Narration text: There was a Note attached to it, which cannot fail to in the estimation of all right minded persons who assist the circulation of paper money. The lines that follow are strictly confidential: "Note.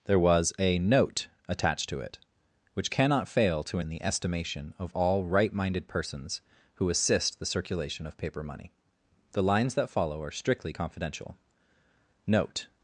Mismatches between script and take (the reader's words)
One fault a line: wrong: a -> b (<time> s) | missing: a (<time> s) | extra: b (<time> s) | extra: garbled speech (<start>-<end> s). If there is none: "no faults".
no faults